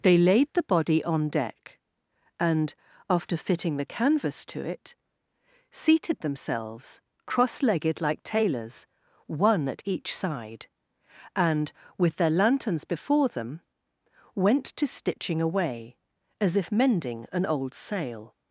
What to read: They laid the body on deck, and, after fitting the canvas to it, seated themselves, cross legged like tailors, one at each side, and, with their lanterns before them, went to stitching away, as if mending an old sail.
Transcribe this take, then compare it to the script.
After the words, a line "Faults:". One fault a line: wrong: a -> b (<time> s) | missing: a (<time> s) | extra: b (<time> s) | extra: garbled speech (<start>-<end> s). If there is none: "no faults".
They laid the body on deck, and, after fitting the canvas to it, seated themselves, cross legged like tailors, one at each side, and, with their lanterns before them, went to stitching away, as if mending an old sail.
Faults:
no faults